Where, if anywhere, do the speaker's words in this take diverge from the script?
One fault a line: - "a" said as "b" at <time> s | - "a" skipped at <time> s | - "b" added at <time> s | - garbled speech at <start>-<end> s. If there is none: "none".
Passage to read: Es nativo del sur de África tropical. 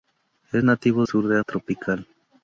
- "del" skipped at 1.0 s
- "África" skipped at 1.4 s